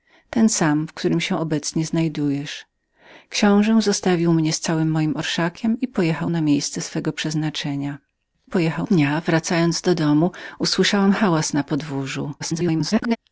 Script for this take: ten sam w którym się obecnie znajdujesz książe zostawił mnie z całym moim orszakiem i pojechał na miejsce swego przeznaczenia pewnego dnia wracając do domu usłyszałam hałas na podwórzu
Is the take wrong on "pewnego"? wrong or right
wrong